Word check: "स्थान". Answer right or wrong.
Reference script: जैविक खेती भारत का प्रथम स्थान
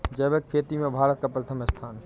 right